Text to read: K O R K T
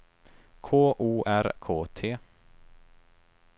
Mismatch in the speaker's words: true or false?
false